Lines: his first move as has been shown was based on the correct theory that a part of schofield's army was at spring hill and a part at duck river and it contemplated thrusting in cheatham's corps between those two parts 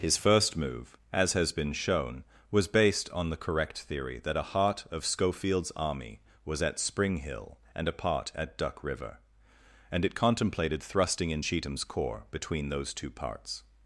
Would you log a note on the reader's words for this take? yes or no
yes